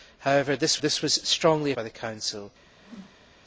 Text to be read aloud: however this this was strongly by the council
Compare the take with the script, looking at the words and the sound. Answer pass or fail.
fail